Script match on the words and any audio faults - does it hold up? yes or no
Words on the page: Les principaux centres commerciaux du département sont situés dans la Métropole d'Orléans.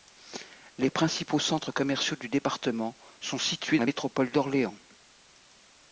no